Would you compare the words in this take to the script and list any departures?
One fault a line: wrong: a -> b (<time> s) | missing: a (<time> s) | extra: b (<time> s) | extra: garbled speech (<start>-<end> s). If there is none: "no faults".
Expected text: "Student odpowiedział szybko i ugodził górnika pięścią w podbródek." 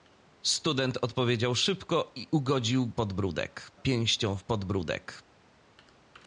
wrong: górnika -> podbródek (2.9 s)